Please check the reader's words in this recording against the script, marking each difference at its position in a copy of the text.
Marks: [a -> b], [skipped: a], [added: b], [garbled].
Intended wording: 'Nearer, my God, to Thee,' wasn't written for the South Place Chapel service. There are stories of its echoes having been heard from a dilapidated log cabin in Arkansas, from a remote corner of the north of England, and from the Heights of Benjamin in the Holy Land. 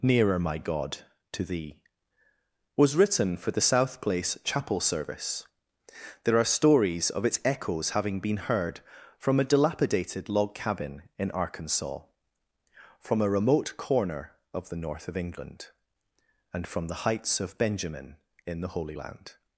'Nearer, my God, to Thee,' [wasn't -> was] written for the South Place Chapel service. There are stories of its echoes having been heard from a dilapidated log cabin in Arkansas, from a remote corner of the north of England, and from the Heights of Benjamin in the Holy Land.